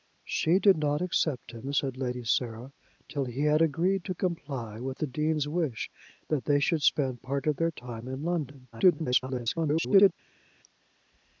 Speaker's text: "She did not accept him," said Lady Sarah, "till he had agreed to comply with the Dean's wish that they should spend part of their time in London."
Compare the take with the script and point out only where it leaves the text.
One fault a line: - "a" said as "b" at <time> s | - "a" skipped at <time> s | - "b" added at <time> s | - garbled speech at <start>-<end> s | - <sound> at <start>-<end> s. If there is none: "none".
- garbled speech at 8.7-10.1 s